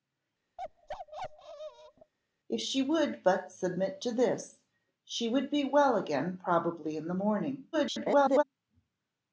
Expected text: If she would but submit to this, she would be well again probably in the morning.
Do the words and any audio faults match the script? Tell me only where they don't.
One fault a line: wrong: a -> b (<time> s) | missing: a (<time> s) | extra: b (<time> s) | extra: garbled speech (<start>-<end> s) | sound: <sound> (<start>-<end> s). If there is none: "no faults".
sound: bark (0.6-2.1 s)
extra: garbled speech (7.7-8.4 s)